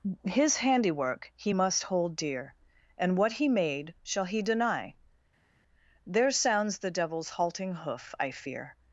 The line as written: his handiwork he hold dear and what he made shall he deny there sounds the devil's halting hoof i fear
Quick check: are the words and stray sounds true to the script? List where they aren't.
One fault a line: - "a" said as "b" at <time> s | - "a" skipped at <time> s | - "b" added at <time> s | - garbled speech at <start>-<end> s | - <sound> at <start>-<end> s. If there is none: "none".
- "must" added at 1.5 s